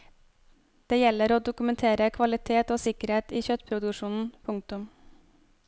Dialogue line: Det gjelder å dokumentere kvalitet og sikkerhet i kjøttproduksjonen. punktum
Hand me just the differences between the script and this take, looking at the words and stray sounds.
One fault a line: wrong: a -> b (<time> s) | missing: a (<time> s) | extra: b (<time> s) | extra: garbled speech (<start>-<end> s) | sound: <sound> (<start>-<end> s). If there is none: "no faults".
no faults